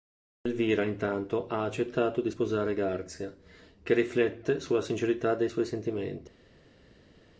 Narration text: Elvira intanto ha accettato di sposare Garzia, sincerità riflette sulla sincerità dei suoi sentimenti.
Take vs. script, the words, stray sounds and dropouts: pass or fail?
fail